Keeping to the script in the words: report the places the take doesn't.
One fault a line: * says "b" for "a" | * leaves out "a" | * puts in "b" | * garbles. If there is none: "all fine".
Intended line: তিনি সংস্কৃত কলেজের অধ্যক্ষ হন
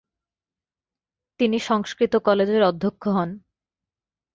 all fine